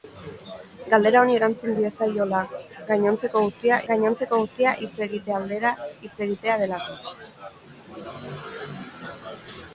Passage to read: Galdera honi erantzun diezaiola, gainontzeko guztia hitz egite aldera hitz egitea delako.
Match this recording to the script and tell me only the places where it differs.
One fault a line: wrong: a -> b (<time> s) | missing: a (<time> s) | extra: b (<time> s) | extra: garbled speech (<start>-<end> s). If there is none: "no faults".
extra: gainontzeko guztia (3.9 s)